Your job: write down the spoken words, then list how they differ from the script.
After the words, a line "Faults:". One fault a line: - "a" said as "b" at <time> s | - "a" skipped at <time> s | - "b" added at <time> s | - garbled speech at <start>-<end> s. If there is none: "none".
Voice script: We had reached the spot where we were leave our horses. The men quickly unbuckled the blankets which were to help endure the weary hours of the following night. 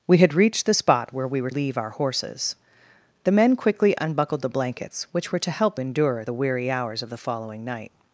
We had reached the spot where we were leave our horses. The men quickly unbuckled the blankets which were to help endure the weary hours of the following night.
Faults:
none